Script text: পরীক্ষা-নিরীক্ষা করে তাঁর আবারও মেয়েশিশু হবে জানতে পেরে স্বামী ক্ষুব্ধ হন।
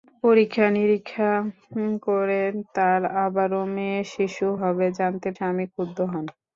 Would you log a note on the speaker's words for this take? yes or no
yes